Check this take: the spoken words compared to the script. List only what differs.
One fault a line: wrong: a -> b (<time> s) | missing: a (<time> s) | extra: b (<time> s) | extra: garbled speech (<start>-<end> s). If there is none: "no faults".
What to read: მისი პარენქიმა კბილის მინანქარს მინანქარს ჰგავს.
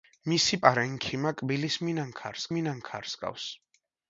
no faults